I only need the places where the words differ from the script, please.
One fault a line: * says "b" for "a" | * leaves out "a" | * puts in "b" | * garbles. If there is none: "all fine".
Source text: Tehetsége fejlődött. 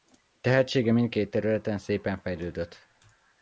* puts in "mindkét területen szépen"